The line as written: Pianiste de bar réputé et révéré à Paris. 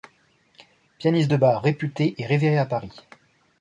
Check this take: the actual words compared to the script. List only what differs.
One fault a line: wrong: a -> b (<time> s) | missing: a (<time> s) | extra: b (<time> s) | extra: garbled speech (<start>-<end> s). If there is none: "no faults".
no faults